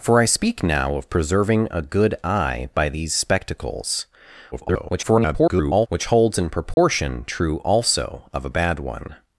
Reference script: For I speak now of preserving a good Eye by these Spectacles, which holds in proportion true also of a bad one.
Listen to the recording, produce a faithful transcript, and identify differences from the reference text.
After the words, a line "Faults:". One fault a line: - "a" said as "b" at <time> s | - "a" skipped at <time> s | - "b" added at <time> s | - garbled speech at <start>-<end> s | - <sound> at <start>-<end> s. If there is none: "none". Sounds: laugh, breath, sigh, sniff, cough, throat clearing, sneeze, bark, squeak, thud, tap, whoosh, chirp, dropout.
For I speak now of preserving a good Eye by these Spectacles, [garbled] which holds in proportion true also of a bad one.
Faults:
- garbled speech at 4.5-5.9 s
- dropout at 6.7-6.8 s